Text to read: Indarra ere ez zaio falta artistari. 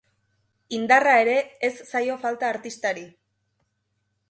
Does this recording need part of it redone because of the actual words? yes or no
no